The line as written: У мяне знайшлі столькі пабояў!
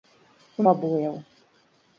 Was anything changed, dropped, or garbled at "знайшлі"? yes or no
yes